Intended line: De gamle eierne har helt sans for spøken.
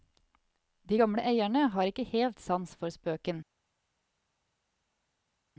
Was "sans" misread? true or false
false